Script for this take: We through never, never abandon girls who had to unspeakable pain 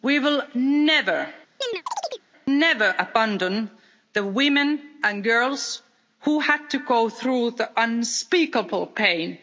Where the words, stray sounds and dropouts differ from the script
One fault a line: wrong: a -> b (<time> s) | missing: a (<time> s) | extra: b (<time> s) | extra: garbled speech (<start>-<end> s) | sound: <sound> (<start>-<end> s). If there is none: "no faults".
wrong: through -> will (0.2 s)
sound: chirp (1.6-2.2 s)
extra: the women and (4.1 s)
extra: go through the (6.8 s)